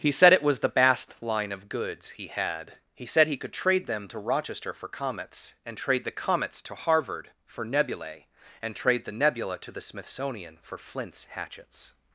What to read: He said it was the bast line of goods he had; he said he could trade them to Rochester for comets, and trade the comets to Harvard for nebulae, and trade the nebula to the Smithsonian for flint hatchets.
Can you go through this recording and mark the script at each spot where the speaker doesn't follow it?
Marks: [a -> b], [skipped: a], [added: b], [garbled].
He said it was the bast line of goods he had; he said he could trade them to Rochester for comets, and trade the comets to Harvard for nebulae, and trade the nebula to the Smithsonian for [flint -> flints] hatchets.